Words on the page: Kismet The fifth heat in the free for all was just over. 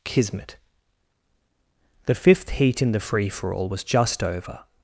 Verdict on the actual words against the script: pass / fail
pass